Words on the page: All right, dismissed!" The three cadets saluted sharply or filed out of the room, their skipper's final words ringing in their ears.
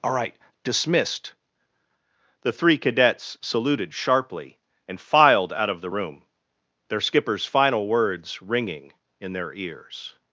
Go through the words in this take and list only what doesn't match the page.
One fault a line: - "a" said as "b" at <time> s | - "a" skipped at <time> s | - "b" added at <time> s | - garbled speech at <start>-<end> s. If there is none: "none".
- "or" said as "and" at 4.9 s